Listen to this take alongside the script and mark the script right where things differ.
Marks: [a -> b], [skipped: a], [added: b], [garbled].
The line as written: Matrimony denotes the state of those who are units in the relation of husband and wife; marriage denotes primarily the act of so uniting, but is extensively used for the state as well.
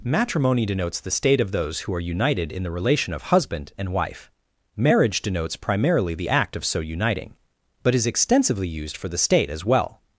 Matrimony denotes the state of those who are [units -> united] in the relation of husband and wife; marriage denotes primarily the act of so uniting, but is extensively used for the state as well.